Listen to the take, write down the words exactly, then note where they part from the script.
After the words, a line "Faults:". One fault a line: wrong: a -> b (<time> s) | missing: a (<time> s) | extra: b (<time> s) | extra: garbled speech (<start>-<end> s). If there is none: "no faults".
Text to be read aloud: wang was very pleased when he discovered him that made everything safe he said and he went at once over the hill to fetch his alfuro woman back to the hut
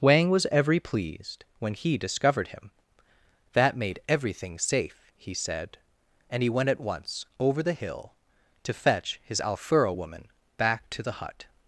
wang was every pleased when he discovered him that made everything safe he said and he went at once over the hill to fetch his alfuro woman back to the hut
Faults:
wrong: very -> every (0.5 s)